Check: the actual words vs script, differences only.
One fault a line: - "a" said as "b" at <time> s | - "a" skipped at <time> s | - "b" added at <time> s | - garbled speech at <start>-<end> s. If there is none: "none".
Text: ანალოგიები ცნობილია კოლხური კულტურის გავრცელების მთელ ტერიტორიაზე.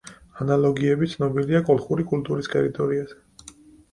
- "გავრცელების მთელ" skipped at 2.5 s